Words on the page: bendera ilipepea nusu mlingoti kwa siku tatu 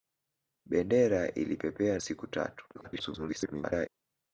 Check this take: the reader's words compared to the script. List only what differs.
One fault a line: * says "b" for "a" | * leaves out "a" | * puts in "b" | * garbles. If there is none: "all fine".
* leaves out "nusu mlingoti kwa"
* garbles